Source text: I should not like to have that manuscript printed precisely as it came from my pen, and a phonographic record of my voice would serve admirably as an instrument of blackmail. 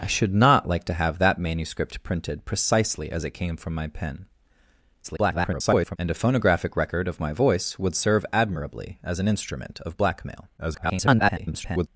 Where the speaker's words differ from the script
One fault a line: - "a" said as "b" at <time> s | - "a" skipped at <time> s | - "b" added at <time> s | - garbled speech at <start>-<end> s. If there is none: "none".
- garbled speech at 5.0-6.0 s
- garbled speech at 10.6-11.9 s